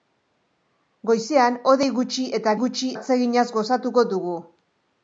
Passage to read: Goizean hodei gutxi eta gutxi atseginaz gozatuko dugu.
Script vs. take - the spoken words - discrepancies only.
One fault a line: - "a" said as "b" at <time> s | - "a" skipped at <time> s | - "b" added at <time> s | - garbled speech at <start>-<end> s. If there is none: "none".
none